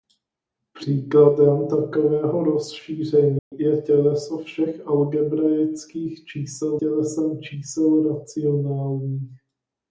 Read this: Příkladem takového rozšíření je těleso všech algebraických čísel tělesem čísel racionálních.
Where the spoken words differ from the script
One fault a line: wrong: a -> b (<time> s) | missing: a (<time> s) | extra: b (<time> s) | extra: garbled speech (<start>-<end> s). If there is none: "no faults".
no faults